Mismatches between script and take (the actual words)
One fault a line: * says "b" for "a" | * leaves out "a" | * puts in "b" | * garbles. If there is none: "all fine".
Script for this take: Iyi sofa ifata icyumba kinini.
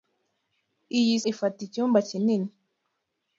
* leaves out "sofa"